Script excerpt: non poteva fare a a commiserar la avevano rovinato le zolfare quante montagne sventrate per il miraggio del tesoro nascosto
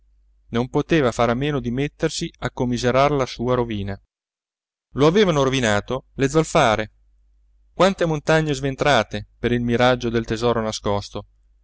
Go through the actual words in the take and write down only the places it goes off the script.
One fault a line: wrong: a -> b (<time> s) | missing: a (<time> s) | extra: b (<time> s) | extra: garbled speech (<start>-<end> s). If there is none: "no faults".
extra: meno di mettersi (1.3 s)
extra: sua rovina lo (3.3 s)